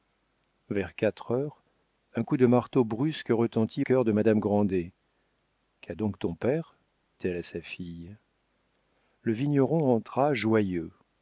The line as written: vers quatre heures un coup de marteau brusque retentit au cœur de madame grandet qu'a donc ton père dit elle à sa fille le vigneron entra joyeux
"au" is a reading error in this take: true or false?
true